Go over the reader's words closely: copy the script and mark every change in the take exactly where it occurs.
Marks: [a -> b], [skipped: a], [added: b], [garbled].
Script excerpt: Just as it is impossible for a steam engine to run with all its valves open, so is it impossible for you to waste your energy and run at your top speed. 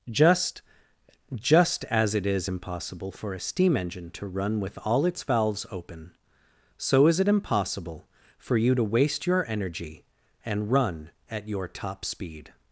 Just [added: just] as it is impossible for a steam engine to run with all its valves open, so is it impossible for you to waste your energy and run at your top speed.